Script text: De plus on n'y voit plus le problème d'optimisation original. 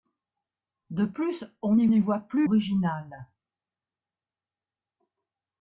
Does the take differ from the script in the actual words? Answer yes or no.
yes